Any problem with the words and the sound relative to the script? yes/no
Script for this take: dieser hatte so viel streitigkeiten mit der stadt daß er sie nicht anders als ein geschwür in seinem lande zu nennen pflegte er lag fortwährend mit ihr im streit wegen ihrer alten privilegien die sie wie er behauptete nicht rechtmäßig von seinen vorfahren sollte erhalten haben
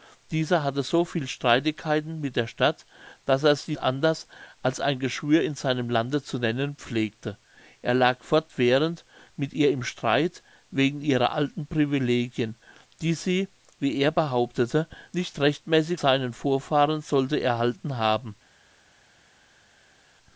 yes